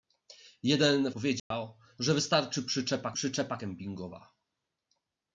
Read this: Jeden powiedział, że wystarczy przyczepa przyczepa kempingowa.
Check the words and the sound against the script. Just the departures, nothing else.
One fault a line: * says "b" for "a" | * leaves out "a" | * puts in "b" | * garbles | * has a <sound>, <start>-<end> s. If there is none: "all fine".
* has a dropout, 1.4-1.5 s